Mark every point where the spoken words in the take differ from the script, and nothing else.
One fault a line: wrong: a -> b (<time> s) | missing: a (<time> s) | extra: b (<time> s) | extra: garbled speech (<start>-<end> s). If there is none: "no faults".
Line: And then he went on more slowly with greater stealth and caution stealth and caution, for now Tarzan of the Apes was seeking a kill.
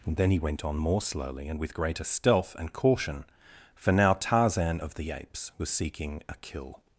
extra: and (1.5 s)
missing: stealth and caution (3.2 s)